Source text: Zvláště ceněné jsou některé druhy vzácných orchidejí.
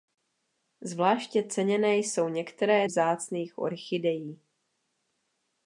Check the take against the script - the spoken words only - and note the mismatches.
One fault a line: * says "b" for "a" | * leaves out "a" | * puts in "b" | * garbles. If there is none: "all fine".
* leaves out "druhy"